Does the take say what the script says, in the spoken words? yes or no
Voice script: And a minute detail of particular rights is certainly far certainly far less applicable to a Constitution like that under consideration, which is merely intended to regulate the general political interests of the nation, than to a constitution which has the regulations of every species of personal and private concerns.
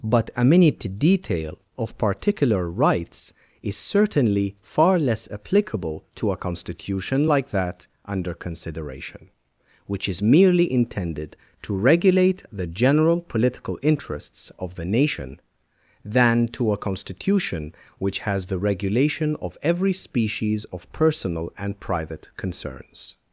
no